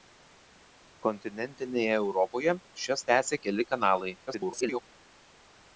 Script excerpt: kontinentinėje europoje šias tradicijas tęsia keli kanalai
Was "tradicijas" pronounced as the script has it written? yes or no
no